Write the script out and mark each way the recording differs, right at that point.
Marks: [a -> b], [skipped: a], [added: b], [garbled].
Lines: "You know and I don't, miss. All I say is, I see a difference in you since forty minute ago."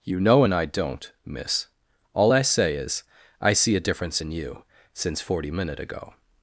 "You know and I don't, miss. All I say is, I see a difference in you since forty minute ago."